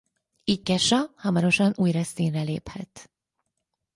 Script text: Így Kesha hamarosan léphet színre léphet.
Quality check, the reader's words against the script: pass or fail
fail